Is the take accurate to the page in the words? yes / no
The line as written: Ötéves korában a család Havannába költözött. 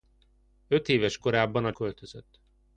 no